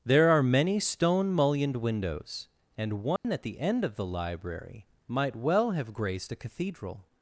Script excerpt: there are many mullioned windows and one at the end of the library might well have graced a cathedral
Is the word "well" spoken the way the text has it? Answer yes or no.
yes